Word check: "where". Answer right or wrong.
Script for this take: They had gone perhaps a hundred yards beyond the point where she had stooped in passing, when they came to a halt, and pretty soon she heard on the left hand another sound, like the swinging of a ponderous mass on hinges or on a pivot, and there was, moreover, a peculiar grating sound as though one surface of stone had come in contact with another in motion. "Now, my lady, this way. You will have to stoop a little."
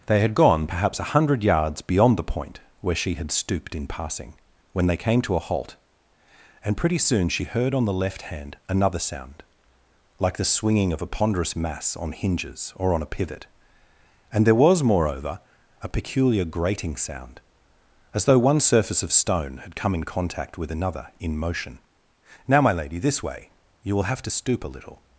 right